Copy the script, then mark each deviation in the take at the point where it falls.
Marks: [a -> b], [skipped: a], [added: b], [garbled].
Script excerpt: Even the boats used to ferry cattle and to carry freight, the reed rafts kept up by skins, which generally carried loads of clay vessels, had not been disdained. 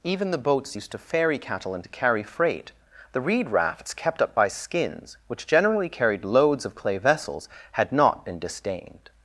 Even the boats used to ferry cattle and to carry freight, the reed rafts kept up by skins, which generally carried loads of clay vessels, had not been disdained.